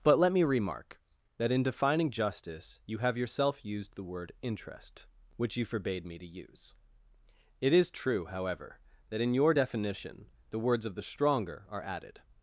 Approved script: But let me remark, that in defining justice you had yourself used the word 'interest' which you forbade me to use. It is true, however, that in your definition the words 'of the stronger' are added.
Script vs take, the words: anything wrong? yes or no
yes